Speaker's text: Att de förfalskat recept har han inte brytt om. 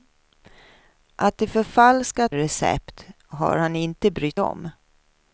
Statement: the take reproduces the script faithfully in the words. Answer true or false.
true